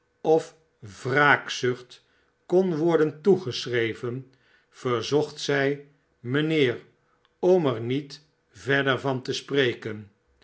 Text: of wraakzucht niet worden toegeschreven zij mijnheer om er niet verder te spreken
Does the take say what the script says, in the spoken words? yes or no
no